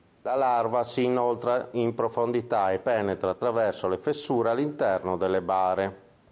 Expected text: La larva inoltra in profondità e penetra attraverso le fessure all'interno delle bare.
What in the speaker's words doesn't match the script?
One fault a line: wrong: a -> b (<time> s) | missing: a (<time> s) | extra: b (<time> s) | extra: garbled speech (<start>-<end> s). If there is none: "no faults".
extra: si (0.8 s)